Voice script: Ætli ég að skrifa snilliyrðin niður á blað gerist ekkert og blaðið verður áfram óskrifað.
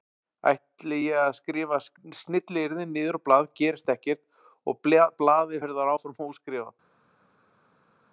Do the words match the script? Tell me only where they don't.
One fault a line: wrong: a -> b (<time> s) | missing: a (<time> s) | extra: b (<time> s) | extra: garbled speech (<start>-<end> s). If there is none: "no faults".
no faults